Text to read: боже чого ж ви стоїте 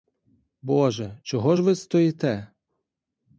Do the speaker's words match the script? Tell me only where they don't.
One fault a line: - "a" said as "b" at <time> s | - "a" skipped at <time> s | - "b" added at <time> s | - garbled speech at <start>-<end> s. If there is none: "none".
none